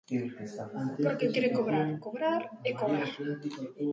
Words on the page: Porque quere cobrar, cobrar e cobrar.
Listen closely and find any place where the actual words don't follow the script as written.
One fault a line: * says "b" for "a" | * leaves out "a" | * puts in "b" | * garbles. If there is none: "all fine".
all fine